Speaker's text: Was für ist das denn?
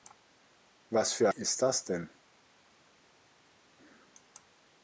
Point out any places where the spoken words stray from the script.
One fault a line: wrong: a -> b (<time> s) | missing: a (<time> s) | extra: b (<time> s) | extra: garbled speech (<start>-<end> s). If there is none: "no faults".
no faults